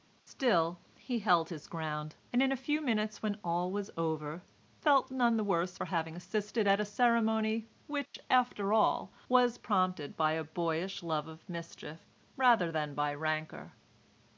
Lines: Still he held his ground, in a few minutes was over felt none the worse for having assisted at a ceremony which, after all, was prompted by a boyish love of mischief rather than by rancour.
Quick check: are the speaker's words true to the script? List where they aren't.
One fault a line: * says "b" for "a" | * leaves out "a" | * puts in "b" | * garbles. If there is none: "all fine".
* puts in "and"
* puts in "when all"